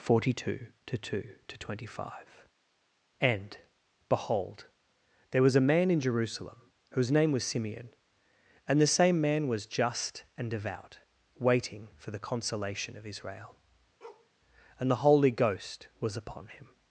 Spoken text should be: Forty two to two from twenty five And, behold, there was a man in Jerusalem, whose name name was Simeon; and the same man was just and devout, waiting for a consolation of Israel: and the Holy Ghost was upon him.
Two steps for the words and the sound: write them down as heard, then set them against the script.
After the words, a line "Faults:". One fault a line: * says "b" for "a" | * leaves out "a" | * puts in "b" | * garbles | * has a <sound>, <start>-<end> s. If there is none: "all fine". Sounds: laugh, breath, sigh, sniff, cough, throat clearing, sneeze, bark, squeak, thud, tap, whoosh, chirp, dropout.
Forty two to two to twenty five And, behold, there was a man in Jerusalem, whose name was Simeon; and the same man was just and devout, waiting for the consolation of Israel: and the Holy Ghost was upon him.
Faults:
* says "to" for "from"
* leaves out "name"
* says "the" for "a"
* has a bark, 14.0-14.3 s